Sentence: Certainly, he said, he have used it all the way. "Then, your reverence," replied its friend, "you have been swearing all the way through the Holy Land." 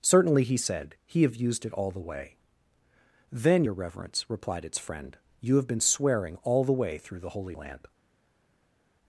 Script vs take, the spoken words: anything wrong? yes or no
no